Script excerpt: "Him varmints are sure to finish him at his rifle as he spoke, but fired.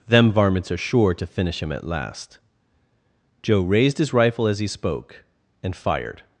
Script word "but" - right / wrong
wrong